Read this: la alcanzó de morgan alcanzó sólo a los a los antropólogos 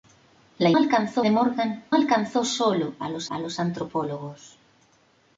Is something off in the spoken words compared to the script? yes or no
no